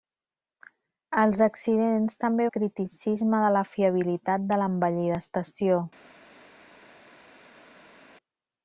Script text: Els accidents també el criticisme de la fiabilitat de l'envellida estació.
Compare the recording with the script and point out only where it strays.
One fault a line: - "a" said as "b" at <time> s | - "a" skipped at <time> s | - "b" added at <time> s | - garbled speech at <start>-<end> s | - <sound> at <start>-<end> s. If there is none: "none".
none